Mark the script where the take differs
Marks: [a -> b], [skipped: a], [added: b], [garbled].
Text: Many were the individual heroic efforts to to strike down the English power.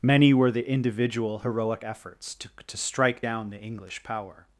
Many were the individual heroic efforts to to strike down the English power.